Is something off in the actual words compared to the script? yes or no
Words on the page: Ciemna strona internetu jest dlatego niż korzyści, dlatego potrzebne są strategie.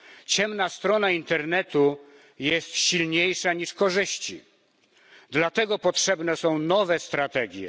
yes